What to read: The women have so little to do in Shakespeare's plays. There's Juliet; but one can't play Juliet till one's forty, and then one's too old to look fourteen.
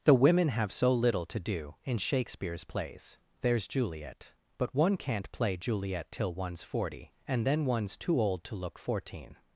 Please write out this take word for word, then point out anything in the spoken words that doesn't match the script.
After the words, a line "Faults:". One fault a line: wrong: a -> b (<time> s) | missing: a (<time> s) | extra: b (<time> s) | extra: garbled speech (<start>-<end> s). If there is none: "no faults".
The women have so little to do in Shakespeare's plays. There's Juliet; but one can't play Juliet till one's forty, and then one's too old to look fourteen.
Faults:
no faults